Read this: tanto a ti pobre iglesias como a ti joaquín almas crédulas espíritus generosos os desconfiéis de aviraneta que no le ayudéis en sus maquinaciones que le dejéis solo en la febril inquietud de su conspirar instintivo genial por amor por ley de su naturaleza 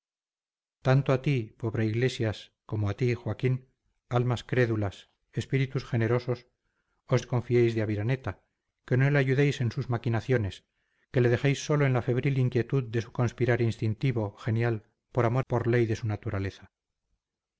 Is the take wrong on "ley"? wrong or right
right